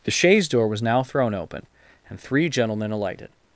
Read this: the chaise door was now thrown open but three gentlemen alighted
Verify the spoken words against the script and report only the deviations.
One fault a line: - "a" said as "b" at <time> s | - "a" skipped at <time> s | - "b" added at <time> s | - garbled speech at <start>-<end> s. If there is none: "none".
- "but" said as "and" at 2.1 s